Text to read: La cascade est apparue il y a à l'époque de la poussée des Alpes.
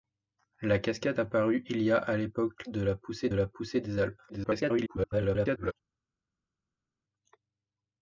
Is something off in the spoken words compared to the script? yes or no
yes